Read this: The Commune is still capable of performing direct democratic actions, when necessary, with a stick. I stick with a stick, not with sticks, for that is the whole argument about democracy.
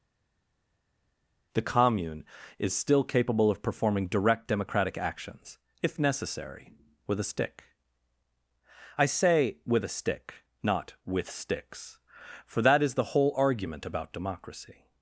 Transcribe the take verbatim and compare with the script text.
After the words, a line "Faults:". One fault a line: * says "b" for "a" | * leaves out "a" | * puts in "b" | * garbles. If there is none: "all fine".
The Commune is still capable of performing direct democratic actions, if necessary, with a stick. I say with a stick, not with sticks, for that is the whole argument about democracy.
Faults:
* says "if" for "when"
* says "say" for "stick"